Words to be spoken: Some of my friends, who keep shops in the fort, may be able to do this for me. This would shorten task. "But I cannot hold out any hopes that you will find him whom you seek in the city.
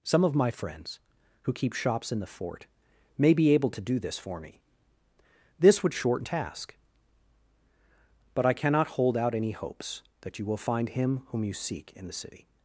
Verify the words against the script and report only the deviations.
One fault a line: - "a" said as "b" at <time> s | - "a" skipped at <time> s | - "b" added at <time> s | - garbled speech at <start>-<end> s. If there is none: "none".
none